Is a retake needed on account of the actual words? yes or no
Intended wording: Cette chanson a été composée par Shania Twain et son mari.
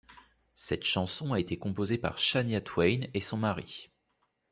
no